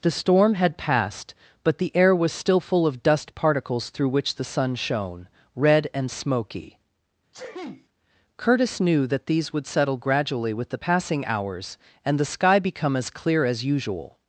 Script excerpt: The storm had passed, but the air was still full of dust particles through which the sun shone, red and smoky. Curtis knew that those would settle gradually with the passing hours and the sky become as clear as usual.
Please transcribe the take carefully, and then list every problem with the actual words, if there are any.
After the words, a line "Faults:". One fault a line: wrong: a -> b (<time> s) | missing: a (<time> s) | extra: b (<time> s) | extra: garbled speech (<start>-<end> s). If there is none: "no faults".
The storm had passed, but the air was still full of dust particles through which the sun shone, red and smoky. Curtis knew that these would settle gradually with the passing hours and the sky become as clear as usual.
Faults:
wrong: those -> these (9.3 s)